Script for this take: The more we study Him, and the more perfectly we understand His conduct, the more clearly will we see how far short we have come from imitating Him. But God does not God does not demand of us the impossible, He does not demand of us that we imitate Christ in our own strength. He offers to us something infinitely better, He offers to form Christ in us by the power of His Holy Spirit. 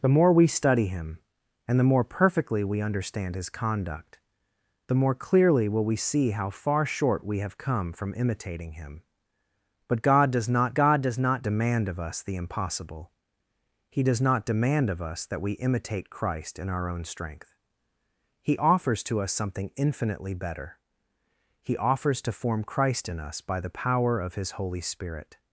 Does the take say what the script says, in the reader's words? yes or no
yes